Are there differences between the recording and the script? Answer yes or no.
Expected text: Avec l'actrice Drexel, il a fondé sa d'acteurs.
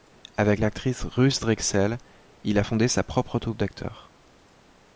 yes